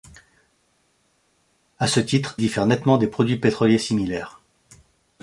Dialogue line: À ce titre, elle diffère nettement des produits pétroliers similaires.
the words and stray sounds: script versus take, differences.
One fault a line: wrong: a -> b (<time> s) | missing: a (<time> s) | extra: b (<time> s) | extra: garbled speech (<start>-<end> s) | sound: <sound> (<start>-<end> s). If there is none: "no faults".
missing: elle (2.4 s)